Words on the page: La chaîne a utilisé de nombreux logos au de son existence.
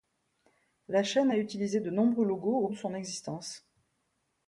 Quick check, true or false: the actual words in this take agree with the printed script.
true